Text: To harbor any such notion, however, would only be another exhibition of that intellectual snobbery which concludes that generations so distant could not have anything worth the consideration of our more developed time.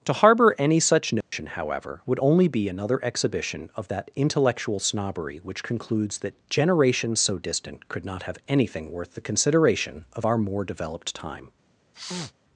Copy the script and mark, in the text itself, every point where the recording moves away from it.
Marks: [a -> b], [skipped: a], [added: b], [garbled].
To harbor any such notion, however, would only be another exhibition of that intellectual snobbery which concludes that generations so distant could not have anything worth the consideration of our more developed time.